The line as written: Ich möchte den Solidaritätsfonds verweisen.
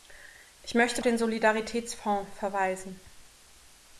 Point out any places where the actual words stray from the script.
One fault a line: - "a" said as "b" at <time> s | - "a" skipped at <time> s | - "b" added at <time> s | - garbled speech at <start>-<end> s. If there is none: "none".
none